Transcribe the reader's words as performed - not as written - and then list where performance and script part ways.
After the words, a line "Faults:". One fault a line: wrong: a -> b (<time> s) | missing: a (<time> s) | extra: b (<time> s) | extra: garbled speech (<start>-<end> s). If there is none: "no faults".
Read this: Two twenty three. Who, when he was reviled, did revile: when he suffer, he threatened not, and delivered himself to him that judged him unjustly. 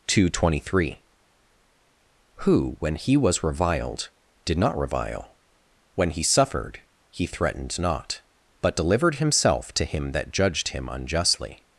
Two twenty three. Who, when he was reviled, did not revile: when he suffered, he threatened not, but delivered himself to him that judged him unjustly.
Faults:
extra: not (4.6 s)
wrong: suffer -> suffered (6.2 s)
wrong: and -> but (8.6 s)